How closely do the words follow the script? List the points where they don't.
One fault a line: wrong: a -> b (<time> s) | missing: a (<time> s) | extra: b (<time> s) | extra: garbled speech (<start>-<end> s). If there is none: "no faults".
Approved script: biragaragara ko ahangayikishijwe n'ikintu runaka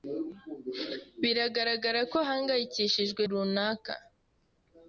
missing: n'ikintu (3.2 s)